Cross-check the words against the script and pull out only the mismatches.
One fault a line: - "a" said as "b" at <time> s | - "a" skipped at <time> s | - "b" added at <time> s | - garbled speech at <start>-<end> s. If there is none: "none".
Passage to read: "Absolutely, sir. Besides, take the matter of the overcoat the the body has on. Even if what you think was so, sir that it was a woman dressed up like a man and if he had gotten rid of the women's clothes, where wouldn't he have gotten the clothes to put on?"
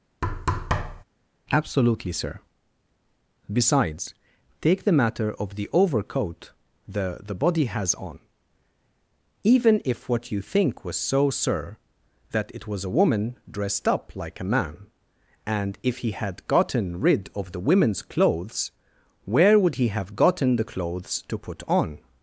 - "wouldn't" said as "would" at 19.6 s